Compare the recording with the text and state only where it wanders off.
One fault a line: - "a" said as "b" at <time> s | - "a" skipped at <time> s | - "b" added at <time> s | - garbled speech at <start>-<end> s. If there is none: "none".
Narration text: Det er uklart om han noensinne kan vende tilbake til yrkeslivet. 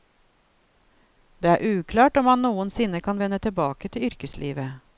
none